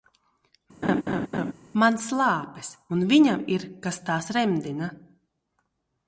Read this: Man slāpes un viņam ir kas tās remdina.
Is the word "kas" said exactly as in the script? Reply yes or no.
yes